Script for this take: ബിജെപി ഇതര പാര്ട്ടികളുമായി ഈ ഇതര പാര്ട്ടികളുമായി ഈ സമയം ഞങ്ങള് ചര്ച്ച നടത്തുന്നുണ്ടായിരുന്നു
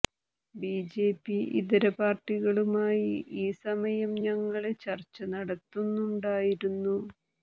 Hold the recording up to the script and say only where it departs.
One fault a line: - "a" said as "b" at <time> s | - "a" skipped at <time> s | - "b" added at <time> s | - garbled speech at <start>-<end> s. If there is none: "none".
- "ഇതര പാര്ട്ടികളുമായി ഈ" skipped at 3.5 s